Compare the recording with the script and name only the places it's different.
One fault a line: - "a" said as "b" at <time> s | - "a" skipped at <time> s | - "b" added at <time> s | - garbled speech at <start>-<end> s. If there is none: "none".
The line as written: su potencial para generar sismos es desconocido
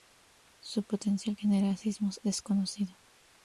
- "para" skipped at 1.4 s
- "es" skipped at 2.2 s